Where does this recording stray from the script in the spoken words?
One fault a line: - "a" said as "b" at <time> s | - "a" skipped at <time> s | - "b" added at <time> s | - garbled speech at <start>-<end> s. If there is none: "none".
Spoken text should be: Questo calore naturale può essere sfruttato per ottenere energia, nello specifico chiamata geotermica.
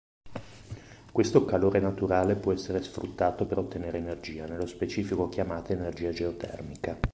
- "energia" added at 5.7 s